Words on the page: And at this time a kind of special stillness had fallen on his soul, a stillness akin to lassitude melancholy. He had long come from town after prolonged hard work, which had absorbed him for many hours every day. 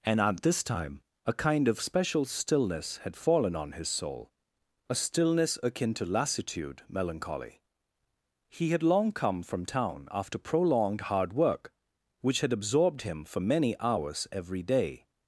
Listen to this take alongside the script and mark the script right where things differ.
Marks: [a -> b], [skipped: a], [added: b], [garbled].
And at this time a kind of special stillness had fallen on his soul, a stillness akin to lassitude melancholy. He had long come from town after prolonged hard work, which had absorbed him for many hours every day.